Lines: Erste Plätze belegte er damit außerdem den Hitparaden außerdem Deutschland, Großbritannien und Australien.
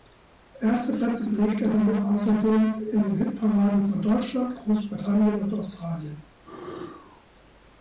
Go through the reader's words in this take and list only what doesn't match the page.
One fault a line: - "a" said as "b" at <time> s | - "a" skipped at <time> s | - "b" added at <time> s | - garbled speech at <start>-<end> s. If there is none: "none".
- "in" added at 2.9 s
- "außerdem" said as "von" at 3.9 s